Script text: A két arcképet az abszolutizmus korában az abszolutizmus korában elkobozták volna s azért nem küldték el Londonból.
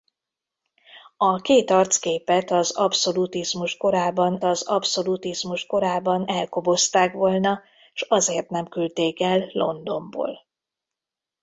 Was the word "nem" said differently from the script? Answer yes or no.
no